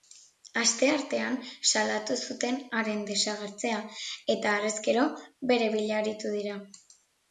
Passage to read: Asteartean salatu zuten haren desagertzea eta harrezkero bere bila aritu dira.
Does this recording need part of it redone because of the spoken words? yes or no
no